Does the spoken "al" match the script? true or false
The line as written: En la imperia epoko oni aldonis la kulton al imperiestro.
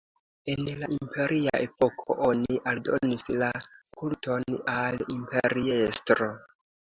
true